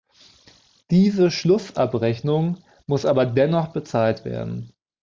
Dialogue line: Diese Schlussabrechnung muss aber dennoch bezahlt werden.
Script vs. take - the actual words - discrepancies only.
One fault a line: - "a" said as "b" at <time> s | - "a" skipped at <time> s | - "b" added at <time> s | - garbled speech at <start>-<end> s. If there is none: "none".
none